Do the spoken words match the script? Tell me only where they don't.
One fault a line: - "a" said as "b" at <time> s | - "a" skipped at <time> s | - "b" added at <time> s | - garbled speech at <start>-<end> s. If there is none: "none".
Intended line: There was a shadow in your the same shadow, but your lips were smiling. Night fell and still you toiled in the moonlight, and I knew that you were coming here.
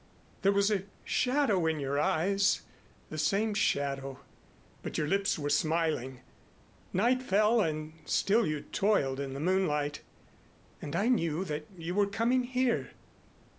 - "eyes" added at 2.0 s